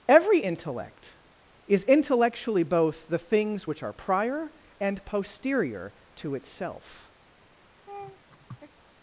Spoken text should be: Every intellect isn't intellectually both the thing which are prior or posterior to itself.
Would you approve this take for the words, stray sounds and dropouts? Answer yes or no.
no